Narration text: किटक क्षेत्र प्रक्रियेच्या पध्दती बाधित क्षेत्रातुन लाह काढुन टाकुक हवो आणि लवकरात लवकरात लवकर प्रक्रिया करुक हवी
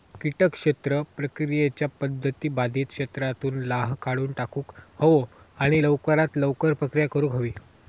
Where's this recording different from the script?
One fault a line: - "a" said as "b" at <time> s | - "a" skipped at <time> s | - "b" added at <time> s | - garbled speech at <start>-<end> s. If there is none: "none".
- "लवकरात" skipped at 6.4 s